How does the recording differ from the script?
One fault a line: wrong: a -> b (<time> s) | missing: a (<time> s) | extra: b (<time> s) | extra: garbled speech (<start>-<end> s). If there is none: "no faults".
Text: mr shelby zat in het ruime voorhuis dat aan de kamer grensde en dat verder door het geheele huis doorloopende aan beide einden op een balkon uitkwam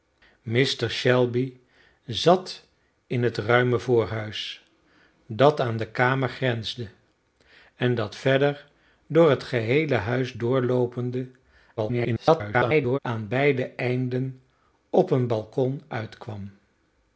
extra: garbled speech (11.8-13.0 s)